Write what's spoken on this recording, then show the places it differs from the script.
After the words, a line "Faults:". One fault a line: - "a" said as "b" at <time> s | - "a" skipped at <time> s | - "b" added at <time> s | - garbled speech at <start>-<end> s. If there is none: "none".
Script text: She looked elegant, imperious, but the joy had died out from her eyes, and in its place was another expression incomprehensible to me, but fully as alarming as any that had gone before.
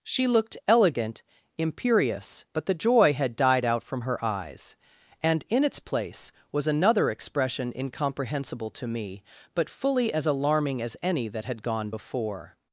She looked elegant, imperious, but the joy had died out from her eyes, and in its place was another expression incomprehensible to me, but fully as alarming as any that had gone before.
Faults:
none